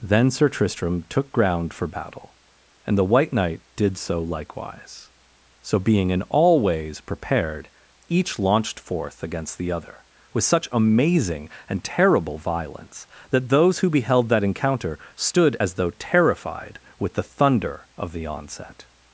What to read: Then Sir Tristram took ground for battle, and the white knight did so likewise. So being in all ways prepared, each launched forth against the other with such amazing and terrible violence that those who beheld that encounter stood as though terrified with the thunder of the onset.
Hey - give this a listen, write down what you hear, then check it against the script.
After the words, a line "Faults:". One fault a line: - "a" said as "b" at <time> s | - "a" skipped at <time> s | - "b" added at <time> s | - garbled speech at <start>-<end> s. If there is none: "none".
Then Sir Tristram took ground for battle, and the white knight did so likewise. So being in all ways prepared, each launched forth against the other with such amazing and terrible violence that those who beheld that encounter stood as though terrified with the thunder of the onset.
Faults:
none